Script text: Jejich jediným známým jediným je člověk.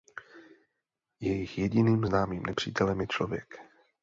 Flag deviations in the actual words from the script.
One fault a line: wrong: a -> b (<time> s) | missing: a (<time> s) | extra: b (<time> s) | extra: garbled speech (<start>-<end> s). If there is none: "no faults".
wrong: jediným -> nepřítelem (2.4 s)